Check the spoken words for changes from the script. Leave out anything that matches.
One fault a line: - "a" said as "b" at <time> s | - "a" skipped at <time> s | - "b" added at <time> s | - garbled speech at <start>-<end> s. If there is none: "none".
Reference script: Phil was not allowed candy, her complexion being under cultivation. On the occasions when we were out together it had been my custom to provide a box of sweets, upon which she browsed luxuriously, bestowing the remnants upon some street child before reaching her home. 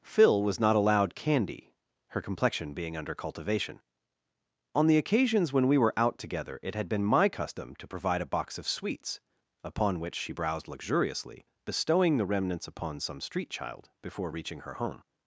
none